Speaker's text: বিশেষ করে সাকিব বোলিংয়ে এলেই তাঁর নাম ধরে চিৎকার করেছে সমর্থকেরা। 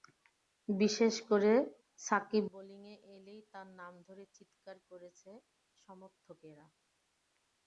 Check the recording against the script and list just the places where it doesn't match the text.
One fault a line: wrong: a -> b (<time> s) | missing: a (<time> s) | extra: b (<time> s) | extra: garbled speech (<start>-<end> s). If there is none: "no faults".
no faults